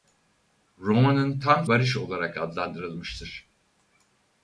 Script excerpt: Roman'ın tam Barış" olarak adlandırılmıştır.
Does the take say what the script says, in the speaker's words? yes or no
yes